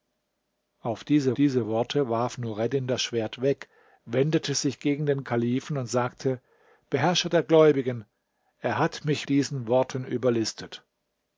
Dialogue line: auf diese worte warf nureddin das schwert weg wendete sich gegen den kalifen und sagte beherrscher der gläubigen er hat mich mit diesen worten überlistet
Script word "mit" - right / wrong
wrong